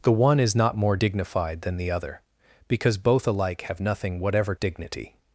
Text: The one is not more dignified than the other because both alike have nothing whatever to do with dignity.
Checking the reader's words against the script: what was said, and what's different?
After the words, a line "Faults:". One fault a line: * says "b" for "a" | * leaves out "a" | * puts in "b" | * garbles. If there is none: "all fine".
The one is not more dignified than the other because both alike have nothing whatever dignity.
Faults:
* leaves out "to do with"